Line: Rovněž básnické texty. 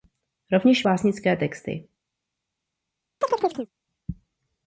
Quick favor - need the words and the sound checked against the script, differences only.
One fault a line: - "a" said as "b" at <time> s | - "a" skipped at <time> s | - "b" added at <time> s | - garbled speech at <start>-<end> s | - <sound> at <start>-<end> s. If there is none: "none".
- chirp at 3.2-3.7 s